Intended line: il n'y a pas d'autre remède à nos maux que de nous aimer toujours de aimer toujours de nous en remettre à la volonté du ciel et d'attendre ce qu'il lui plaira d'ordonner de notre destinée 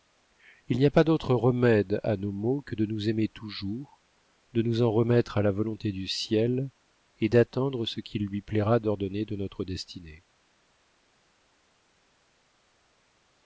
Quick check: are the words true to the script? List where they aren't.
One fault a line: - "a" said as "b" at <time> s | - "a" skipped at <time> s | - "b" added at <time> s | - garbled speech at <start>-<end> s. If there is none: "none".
- "aimer toujours de" skipped at 4.6 s